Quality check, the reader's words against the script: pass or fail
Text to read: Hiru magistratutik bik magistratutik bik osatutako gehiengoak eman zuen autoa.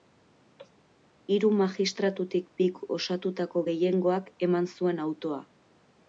fail